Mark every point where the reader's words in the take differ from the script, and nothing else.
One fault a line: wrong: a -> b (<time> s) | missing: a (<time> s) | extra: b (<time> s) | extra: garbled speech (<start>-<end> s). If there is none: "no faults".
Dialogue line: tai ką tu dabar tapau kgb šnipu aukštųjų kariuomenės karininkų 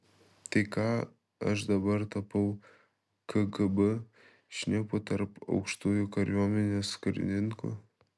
wrong: tu -> aš (1.5 s)
extra: tarp (5.1 s)